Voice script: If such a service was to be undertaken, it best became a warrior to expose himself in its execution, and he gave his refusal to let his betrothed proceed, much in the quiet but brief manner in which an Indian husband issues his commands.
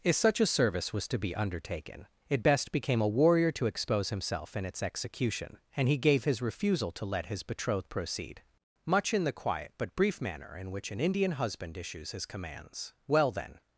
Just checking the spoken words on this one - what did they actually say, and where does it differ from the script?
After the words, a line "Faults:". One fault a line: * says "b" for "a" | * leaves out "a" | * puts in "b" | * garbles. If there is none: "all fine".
If such a service was to be undertaken, it best became a warrior to expose himself in its execution, and he gave his refusal to let his betrothed proceed, much in the quiet but brief manner in which an Indian husband issues his commands. "Well then
Faults:
* puts in "Well then"